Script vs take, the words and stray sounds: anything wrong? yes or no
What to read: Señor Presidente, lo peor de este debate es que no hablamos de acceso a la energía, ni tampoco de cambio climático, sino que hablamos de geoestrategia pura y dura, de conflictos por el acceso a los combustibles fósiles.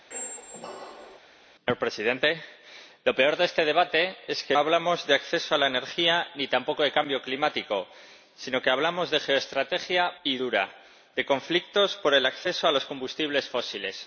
yes